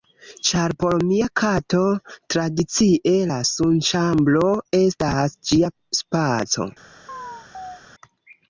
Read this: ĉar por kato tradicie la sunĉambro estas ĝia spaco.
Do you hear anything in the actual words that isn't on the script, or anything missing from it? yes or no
yes